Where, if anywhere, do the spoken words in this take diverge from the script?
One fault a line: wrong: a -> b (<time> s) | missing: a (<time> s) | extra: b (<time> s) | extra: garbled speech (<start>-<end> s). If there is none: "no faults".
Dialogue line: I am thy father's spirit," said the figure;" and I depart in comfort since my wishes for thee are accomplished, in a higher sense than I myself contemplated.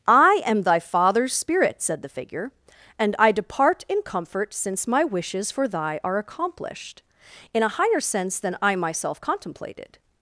wrong: thee -> thy (5.7 s)